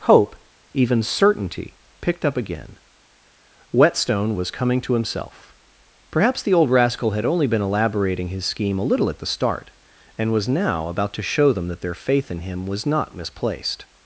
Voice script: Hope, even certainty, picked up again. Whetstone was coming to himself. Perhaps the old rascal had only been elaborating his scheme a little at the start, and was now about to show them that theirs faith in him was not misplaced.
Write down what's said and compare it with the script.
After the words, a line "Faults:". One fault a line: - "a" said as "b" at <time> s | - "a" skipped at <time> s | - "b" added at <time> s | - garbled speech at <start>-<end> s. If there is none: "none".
Hope, even certainty, picked up again. Whetstone was coming to himself. Perhaps the old rascal had only been elaborating his scheme a little at the start, and was now about to show them that their faith in him was not misplaced.
Faults:
- "theirs" said as "their" at 11.8 s